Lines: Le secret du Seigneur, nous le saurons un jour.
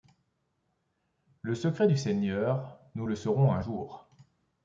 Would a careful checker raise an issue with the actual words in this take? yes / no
no